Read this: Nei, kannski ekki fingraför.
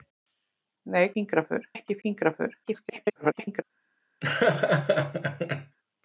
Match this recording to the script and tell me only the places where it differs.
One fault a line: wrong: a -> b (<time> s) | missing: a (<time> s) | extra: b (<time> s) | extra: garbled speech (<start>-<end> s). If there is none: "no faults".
wrong: kannski -> fingraför (1.1 s)
extra: garbled speech (2.6-3.6 s)